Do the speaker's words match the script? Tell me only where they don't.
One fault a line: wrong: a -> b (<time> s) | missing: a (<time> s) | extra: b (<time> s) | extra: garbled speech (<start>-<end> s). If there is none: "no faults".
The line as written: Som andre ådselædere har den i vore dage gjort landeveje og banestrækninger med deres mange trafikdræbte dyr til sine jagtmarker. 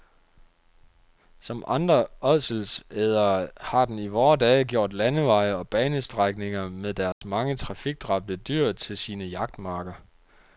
no faults